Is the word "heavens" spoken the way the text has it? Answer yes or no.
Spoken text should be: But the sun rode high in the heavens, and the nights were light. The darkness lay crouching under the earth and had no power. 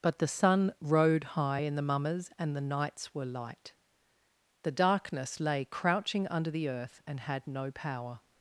no